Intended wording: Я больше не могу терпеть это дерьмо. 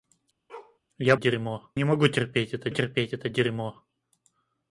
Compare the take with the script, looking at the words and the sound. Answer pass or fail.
fail